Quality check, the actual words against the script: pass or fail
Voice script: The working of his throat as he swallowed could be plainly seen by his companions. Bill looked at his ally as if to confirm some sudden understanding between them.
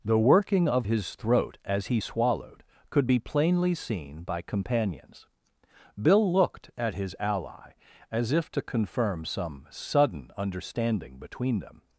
fail